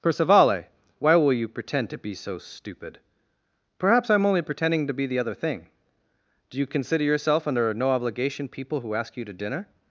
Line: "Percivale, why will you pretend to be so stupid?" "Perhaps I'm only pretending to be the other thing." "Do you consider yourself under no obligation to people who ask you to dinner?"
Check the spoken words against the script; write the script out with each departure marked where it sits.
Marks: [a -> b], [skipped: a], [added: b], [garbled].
"Percivale, why will you pretend to be so stupid?" "Perhaps I'm only pretending to be the other thing." "Do you consider yourself under no obligation [skipped: to] people who ask you to dinner?"